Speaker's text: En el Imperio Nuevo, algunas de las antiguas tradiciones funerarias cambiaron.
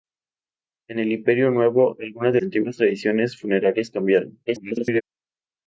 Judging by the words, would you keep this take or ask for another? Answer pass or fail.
fail